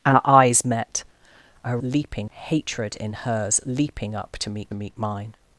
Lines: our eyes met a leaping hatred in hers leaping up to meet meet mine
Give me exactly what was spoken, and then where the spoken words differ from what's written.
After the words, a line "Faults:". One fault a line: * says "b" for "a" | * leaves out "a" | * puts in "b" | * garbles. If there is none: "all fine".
our eyes met a leaping hatred in hers leaping up to meet meet mine
Faults:
all fine